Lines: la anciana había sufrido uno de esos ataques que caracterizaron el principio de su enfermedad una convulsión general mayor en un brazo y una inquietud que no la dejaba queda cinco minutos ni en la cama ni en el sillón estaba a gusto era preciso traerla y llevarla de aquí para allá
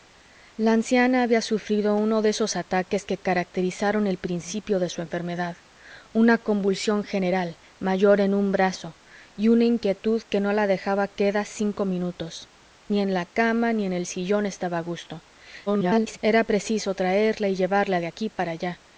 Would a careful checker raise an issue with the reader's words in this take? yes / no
yes